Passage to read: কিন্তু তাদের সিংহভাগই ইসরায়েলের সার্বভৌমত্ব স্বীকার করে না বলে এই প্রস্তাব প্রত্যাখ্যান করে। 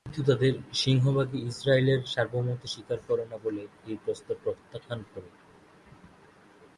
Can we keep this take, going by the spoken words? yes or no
yes